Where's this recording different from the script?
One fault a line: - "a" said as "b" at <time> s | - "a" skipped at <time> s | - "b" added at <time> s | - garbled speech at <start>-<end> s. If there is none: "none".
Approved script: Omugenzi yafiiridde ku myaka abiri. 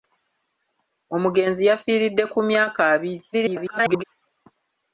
- garbled speech at 3.3-4.0 s